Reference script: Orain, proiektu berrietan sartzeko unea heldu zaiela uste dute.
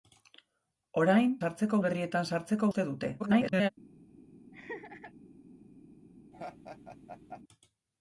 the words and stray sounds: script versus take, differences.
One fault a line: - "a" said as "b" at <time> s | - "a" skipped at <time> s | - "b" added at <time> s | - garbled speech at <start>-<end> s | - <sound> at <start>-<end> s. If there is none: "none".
- "proiektu" said as "sartzeko" at 1.4 s
- "unea heldu zaiela" skipped at 2.7 s
- garbled speech at 3.2-3.7 s
- laugh at 4.5-5.1 s
- laugh at 6.3-7.4 s